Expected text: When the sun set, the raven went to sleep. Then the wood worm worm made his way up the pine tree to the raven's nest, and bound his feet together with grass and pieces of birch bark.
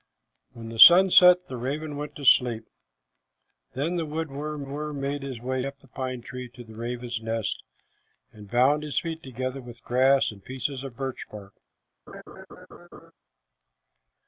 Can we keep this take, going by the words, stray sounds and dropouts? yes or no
no